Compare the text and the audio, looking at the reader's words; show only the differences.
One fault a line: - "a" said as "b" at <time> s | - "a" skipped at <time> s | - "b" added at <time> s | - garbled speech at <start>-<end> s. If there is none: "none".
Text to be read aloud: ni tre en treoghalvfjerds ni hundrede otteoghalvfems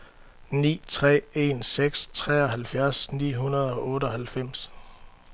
- "seks" added at 1.6 s
- "og" added at 3.7 s